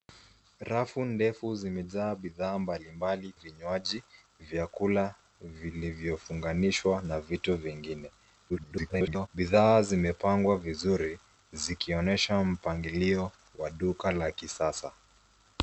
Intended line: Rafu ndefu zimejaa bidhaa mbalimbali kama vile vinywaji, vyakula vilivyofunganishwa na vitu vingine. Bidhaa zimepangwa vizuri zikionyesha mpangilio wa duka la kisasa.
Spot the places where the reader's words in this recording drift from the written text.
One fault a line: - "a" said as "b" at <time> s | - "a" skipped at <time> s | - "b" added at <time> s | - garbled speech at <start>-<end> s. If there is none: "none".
- "kama vile" skipped at 3.3 s
- garbled speech at 8.5-9.3 s